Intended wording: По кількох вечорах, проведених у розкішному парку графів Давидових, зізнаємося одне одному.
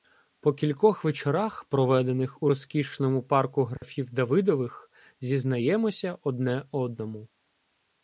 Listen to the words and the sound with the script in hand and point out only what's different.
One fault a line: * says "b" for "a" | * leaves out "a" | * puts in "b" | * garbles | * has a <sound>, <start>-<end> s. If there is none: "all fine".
* has a dropout, 3.8-3.8 s